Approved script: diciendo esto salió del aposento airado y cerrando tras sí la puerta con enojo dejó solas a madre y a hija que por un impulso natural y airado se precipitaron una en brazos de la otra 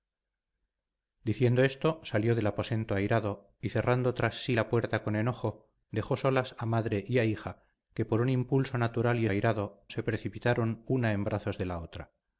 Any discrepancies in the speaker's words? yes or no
no